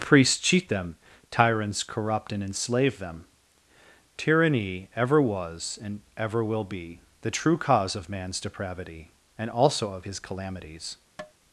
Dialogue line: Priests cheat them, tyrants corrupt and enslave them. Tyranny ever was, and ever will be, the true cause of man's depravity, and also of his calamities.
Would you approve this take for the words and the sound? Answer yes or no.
no